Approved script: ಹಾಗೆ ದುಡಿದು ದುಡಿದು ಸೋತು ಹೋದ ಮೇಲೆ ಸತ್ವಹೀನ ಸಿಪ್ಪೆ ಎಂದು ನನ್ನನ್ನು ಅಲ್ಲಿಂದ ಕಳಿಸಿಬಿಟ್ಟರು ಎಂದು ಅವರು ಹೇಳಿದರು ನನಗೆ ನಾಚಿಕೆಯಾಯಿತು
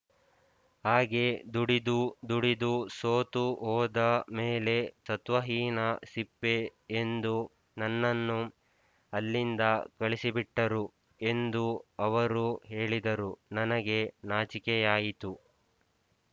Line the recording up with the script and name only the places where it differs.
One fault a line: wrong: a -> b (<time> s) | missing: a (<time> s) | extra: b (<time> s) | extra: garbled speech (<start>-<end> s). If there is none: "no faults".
no faults